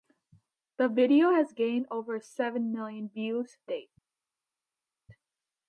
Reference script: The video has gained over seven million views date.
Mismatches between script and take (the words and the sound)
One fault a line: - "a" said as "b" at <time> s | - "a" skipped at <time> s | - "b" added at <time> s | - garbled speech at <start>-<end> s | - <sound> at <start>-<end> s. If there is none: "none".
none